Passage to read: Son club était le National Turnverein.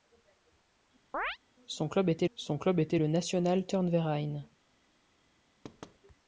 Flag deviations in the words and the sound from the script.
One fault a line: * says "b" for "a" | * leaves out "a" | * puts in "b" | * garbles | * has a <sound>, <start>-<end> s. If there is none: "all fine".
* has a chirp, 1.1-1.4 s
* puts in "son club était"
* has a thud, 5.6-6.0 s